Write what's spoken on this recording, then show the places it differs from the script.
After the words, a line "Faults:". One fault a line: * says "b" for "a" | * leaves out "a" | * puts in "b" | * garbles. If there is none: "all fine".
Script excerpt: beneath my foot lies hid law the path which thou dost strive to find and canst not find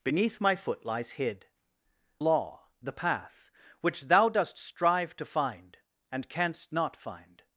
beneath my foot lies hid law the path which thou dost strive to find and canst not find
Faults:
all fine